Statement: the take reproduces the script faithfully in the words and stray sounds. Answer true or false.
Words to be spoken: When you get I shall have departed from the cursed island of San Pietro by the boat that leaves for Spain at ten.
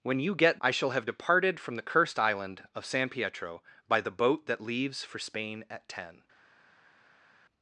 true